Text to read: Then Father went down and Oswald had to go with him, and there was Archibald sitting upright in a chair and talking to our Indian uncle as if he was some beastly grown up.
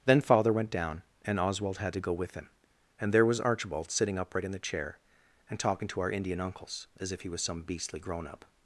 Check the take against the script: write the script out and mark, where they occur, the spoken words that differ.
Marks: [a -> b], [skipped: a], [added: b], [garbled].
Then Father went down and Oswald had to go with him, and there was Archibald sitting upright in [a -> the] chair and talking to our Indian [uncle -> uncles] as if he was some beastly grown up.